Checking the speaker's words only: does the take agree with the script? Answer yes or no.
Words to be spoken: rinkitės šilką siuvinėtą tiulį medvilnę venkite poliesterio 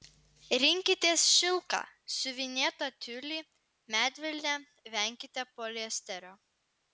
yes